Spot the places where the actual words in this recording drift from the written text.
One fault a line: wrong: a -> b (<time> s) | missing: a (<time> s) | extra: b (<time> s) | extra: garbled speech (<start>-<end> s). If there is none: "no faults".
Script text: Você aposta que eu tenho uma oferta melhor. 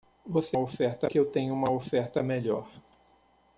wrong: aposta -> oferta (0.6 s)